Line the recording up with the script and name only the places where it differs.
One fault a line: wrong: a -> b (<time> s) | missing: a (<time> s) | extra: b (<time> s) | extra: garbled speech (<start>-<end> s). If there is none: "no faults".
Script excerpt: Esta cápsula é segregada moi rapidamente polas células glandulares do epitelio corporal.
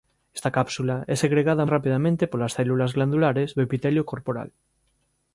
missing: moi (1.7 s)